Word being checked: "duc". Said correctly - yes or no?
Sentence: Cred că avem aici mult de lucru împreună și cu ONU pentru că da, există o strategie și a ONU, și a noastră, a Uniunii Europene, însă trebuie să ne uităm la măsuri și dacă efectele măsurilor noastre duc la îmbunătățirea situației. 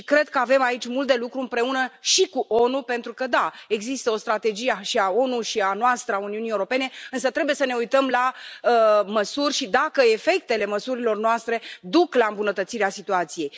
yes